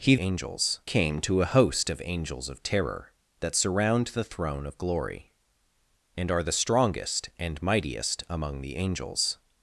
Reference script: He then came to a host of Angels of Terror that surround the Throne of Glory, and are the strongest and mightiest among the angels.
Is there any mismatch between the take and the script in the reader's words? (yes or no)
yes